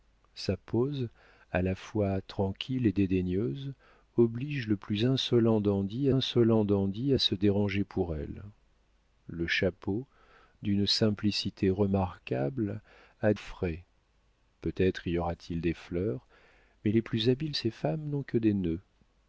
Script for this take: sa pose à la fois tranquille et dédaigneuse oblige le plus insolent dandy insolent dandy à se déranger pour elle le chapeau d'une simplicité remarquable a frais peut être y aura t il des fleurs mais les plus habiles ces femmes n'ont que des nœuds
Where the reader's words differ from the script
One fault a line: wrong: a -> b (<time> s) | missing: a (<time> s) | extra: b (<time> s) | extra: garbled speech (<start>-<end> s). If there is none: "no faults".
no faults